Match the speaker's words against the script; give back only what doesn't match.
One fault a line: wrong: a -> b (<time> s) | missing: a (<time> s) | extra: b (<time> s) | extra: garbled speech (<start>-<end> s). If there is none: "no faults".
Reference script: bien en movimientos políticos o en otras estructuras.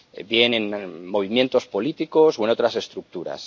no faults